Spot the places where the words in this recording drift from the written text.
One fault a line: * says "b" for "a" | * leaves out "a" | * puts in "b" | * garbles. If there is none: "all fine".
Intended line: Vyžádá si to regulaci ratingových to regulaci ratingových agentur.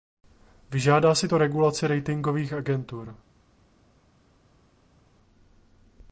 * leaves out "to regulaci ratingových"